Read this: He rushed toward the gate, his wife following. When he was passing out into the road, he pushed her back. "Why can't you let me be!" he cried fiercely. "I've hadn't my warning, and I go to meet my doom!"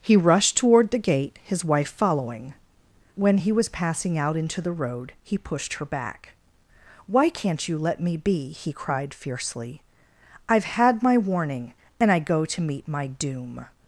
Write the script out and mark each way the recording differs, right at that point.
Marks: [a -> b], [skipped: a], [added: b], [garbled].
He rushed toward the gate, his wife following. When he was passing out into the road, he pushed her back. "Why can't you let me be!" he cried fiercely. "I've [hadn't -> had] my warning, and I go to meet my doom!"